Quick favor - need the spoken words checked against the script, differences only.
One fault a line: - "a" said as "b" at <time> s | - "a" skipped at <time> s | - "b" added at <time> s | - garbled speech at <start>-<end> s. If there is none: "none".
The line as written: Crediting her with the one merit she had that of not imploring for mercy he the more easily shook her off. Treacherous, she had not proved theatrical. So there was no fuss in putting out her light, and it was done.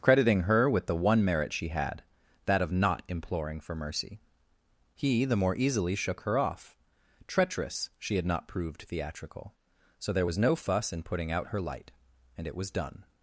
none